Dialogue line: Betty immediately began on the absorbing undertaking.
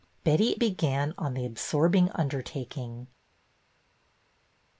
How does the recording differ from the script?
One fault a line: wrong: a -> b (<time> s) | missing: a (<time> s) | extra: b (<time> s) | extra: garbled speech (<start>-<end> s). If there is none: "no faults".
missing: immediately (0.6 s)